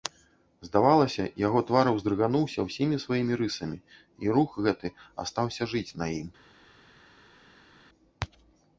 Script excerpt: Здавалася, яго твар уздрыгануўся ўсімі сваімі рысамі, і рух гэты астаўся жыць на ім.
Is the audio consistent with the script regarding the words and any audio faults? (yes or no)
yes